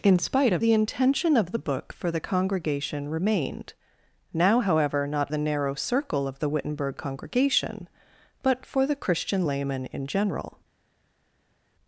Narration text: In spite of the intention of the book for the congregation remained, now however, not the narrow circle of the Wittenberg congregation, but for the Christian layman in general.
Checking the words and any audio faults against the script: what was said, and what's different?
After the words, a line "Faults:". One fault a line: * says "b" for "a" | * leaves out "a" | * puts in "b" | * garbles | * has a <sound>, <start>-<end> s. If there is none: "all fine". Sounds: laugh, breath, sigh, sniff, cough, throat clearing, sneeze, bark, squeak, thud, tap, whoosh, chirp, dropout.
In spite of the intention of the book for the congregation remained, now however, not the narrow circle of the Wittenberg congregation, but for the Christian layman in general.
Faults:
all fine